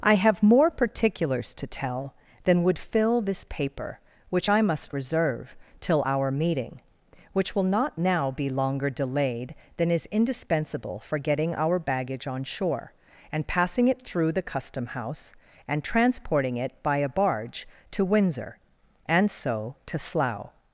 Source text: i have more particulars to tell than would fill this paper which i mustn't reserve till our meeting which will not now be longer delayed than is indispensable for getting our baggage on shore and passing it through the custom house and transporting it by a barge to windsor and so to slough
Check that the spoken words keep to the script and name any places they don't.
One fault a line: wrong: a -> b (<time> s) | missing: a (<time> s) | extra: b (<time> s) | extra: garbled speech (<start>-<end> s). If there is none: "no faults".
wrong: mustn't -> must (4.6 s)